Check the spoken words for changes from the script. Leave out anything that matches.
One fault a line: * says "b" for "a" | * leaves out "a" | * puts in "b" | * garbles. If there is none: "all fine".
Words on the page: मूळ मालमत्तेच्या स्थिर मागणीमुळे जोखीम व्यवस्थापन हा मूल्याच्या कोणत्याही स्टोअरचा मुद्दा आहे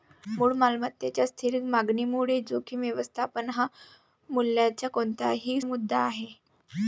* leaves out "स्टोअरचा"